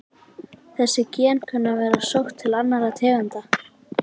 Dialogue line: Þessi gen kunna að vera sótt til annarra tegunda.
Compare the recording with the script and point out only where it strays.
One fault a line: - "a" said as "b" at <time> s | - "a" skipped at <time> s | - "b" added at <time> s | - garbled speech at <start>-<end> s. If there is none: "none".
none